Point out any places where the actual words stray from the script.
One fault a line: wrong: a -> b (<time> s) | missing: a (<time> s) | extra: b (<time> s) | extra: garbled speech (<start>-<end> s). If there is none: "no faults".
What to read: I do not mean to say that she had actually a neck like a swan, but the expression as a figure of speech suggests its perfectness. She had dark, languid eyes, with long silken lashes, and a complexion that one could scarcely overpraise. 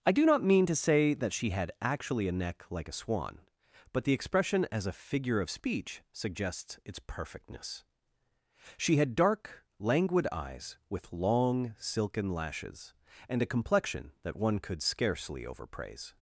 no faults